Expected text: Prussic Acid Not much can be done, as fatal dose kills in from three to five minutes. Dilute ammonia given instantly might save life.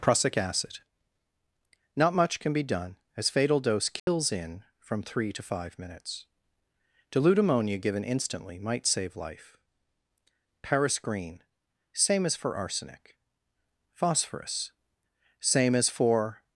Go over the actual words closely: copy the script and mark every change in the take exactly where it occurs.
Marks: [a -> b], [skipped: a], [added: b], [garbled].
Prussic Acid Not much can be done, as fatal dose kills in from three to five minutes. Dilute ammonia given instantly might save life. [added: Paris Green Same as for arsenic Phosphorus Same as for]